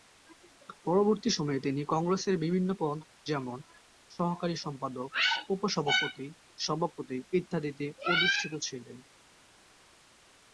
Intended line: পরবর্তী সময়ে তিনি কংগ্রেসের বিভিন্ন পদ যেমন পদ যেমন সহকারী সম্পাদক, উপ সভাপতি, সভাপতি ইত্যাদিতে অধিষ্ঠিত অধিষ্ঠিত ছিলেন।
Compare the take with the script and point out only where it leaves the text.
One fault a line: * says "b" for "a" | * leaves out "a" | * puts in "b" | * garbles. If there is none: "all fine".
* leaves out "পদ যেমন"
* leaves out "অধিষ্ঠিত"